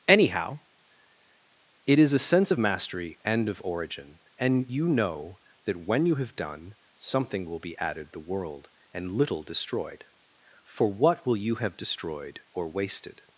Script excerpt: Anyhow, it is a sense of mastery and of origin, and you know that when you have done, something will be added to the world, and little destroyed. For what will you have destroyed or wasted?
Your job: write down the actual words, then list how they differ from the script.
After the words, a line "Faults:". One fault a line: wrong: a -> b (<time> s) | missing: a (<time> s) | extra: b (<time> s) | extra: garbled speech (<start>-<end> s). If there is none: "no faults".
Anyhow, it is a sense of mastery and of origin, and you know that when you have done, something will be added the world, and little destroyed. For what will you have destroyed or wasted?
Faults:
missing: to (8.1 s)